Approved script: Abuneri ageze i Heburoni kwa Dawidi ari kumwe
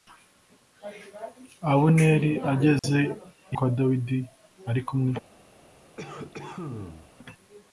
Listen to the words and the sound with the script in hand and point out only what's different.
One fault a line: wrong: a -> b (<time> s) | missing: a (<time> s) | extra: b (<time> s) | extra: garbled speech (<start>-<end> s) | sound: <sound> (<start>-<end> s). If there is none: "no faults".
sound: dropout (2.8-2.8 s)
missing: Heburoni (3.6 s)
sound: cough (6.0-7.1 s)